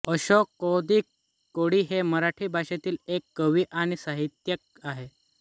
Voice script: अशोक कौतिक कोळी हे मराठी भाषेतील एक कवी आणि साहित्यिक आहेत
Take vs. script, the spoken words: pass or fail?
pass